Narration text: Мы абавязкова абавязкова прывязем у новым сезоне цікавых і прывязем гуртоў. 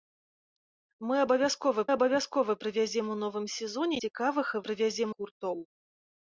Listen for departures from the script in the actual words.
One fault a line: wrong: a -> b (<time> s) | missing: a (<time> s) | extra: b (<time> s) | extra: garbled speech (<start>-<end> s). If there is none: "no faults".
no faults